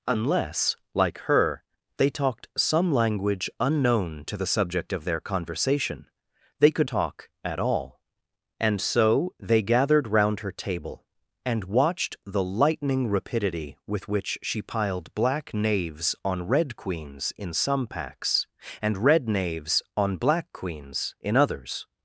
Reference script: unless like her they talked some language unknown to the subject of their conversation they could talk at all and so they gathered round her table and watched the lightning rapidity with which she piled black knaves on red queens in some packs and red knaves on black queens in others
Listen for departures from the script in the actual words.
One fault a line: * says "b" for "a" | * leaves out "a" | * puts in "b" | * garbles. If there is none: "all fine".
all fine